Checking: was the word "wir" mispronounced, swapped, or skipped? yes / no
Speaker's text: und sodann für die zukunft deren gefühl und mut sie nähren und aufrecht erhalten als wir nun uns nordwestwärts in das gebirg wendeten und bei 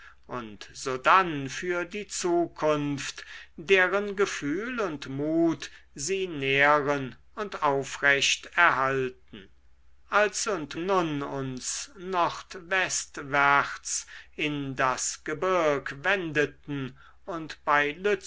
yes